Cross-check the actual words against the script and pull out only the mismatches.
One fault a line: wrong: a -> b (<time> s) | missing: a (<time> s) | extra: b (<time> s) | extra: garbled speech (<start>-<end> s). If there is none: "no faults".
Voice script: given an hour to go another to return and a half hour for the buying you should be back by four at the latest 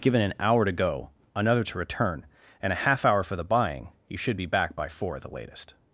no faults